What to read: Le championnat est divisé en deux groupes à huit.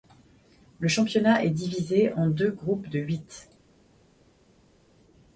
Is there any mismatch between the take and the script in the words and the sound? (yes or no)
yes